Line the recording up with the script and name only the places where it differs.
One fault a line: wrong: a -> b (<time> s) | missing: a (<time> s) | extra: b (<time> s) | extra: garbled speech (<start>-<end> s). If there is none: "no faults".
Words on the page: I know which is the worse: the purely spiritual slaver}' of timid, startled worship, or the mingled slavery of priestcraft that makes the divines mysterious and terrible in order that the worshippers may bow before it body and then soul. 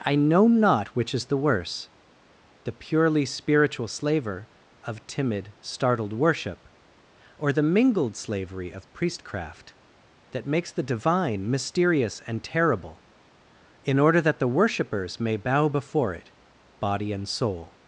extra: not (0.5 s)
wrong: divines -> divine (10.8 s)
missing: then (17.3 s)